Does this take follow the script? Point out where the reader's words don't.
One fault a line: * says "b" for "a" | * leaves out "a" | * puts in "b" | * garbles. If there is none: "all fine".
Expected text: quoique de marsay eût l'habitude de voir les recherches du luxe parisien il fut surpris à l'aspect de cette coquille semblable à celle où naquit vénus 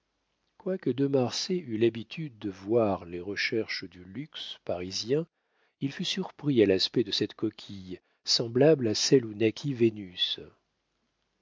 all fine